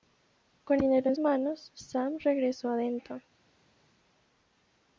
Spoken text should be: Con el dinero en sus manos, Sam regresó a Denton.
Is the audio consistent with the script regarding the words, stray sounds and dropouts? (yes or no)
no